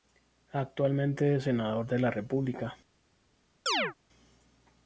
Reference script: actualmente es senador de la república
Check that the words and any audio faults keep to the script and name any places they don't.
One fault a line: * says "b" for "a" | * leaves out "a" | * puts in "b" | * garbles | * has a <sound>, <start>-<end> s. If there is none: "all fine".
* has a chirp, 3.7-3.9 s